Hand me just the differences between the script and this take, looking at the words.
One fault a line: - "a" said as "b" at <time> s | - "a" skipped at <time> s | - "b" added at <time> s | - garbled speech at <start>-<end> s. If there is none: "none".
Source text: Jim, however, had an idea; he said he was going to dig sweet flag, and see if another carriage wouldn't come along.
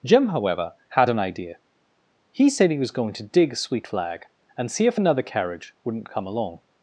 none